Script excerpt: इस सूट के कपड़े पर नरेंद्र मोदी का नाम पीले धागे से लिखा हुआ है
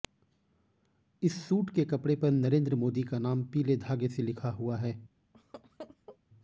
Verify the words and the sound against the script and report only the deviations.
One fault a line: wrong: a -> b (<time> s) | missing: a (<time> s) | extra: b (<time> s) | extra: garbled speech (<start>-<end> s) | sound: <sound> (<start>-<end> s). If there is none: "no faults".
sound: laugh (5.3-6.2 s)